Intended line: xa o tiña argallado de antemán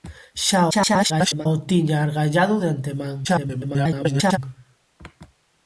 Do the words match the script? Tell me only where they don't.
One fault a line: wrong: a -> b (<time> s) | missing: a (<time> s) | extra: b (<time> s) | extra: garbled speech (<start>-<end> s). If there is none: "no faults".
extra: garbled speech (0.7-1.5 s)
extra: garbled speech (3.2-4.4 s)